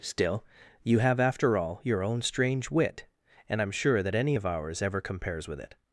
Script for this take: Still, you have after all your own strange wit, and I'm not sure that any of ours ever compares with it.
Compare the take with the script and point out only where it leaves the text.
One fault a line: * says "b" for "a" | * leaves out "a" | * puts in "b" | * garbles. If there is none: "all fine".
* leaves out "not"